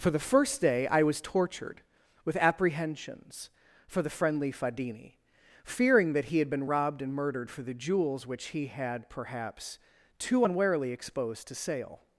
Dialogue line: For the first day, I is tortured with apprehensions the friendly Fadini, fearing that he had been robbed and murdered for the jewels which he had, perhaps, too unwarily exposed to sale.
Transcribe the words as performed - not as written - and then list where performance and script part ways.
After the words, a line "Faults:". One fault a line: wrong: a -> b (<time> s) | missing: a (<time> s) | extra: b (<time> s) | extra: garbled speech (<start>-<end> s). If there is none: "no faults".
For the first day, I was tortured with apprehensions for the friendly Fadini, fearing that he had been robbed and murdered for the jewels which he had, perhaps, too unwarily exposed to sale.
Faults:
wrong: is -> was (1.0 s)
extra: for (3.9 s)